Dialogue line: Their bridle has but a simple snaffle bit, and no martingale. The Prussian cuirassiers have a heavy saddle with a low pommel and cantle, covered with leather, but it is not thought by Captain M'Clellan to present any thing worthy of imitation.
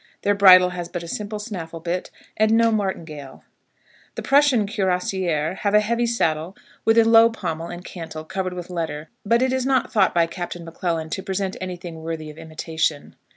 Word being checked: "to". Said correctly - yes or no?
yes